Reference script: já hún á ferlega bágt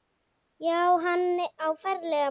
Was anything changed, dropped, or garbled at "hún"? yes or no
yes